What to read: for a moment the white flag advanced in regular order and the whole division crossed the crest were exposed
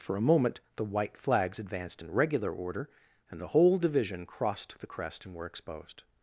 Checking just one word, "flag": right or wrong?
wrong